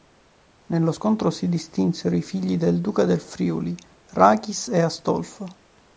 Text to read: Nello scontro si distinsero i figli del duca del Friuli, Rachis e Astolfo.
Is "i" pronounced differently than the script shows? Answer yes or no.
no